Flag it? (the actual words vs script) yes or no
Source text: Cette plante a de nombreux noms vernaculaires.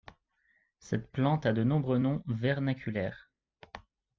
no